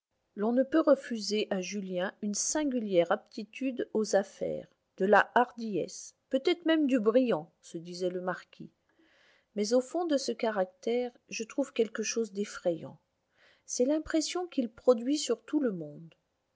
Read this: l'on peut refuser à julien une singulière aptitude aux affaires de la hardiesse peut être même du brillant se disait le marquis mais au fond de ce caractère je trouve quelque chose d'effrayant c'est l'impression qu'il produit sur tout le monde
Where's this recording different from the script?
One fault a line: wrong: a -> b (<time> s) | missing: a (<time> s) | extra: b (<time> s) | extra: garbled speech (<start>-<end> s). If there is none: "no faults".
extra: ne (0.5 s)